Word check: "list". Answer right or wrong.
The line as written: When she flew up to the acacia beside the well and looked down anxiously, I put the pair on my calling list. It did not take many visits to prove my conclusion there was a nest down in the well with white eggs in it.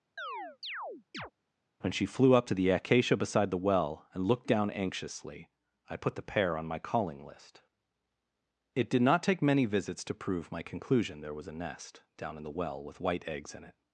right